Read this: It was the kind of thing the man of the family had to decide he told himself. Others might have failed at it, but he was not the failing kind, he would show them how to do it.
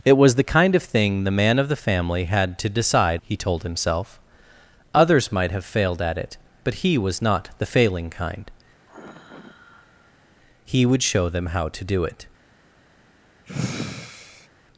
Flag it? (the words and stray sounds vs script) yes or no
yes